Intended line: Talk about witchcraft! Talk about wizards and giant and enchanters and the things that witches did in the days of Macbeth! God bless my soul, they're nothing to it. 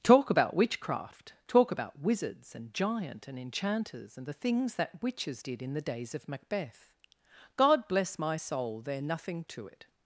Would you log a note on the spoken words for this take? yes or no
no